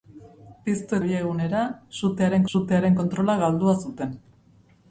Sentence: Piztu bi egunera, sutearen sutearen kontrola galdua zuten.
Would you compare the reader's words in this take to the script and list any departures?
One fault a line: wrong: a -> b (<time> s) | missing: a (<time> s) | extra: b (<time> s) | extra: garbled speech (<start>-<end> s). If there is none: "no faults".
no faults